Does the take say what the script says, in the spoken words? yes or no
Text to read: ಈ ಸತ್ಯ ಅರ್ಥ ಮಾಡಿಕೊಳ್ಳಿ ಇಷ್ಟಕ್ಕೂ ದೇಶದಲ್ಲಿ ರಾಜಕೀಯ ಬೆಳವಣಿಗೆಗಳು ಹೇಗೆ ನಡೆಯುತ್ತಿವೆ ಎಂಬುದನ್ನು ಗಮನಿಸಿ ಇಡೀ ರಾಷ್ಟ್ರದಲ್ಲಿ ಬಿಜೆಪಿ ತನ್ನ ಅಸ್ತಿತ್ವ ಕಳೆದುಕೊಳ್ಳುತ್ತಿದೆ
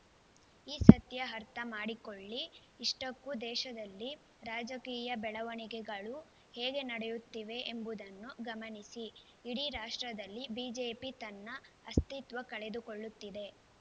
yes